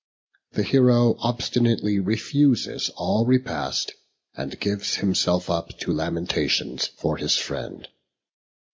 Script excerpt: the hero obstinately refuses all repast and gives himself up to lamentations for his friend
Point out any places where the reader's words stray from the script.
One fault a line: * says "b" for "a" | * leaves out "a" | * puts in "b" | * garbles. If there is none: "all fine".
all fine